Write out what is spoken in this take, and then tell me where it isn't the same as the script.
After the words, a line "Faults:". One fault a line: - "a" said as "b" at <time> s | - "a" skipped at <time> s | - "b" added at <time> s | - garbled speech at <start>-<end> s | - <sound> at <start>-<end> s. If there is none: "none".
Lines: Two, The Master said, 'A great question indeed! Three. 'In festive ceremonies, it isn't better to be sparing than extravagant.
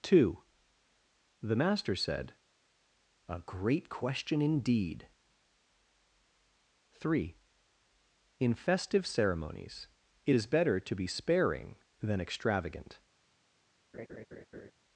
Two, The Master said, 'A great question indeed! Three. 'In festive ceremonies, it is better to be sparing than extravagant.
Faults:
- "isn't" said as "is" at 10.3 s
- laugh at 13.9-14.7 s